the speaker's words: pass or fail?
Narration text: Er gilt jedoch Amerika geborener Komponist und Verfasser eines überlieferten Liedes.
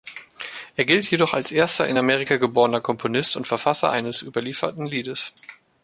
fail